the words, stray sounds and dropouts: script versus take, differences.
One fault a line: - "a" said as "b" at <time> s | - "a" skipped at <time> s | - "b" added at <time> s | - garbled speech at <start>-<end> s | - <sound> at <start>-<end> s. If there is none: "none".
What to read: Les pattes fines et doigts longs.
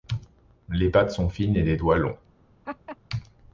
- "sont" added at 1.1 s
- "les" added at 1.6 s
- laugh at 2.6-3.0 s